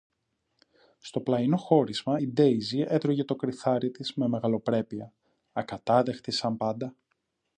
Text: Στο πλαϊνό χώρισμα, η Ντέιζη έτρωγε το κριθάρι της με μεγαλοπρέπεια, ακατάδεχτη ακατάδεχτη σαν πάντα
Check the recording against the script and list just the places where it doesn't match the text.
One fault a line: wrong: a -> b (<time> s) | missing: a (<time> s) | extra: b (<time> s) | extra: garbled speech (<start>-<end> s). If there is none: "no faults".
missing: ακατάδεχτη (6.3 s)